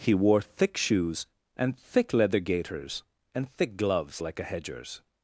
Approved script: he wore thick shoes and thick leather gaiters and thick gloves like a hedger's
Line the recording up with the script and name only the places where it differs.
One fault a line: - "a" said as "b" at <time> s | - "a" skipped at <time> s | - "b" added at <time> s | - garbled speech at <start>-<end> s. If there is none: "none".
none